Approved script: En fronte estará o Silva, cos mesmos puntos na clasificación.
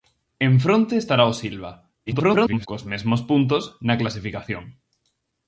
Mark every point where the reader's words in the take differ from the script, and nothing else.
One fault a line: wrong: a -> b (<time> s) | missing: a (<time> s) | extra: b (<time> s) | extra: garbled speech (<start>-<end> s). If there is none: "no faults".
extra: garbled speech (2.1-2.7 s)